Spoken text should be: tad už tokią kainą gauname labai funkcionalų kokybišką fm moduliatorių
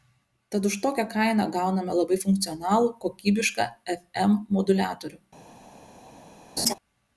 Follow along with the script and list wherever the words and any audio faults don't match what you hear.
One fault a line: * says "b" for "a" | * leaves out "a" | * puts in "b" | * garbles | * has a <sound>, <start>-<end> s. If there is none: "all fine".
* has a laugh, 6.6-6.7 s